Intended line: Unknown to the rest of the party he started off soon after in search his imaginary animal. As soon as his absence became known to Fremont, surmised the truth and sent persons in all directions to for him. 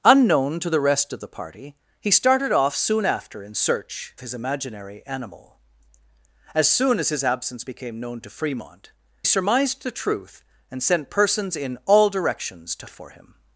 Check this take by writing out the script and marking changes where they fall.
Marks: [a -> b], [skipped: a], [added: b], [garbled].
Unknown to the rest of the party he started off soon after in search his imaginary animal. As soon as his absence became known to Fremont, surmised the truth and sent persons in all directions to for him.